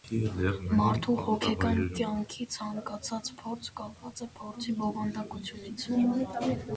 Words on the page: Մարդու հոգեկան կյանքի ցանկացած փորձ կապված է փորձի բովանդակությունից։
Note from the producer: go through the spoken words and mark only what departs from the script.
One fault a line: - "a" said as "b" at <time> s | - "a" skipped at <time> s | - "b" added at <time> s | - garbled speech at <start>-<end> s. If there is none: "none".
none